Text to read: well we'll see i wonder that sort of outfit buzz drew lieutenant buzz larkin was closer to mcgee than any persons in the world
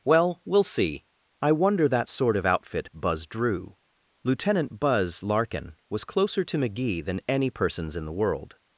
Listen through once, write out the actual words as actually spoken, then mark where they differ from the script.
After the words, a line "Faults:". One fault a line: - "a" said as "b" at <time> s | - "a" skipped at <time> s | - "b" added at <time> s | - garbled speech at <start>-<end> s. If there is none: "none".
well we'll see i wonder that sort of outfit buzz drew lieutenant buzz larkin was closer to mcgee than any persons in the world
Faults:
none